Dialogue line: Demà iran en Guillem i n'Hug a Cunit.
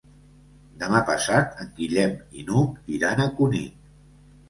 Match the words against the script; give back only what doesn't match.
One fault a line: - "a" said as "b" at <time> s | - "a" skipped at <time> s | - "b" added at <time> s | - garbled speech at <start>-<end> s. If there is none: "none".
- "iran" said as "passat" at 1.1 s
- "iran" added at 3.0 s